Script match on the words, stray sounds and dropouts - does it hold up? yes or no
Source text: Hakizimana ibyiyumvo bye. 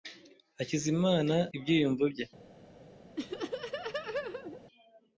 no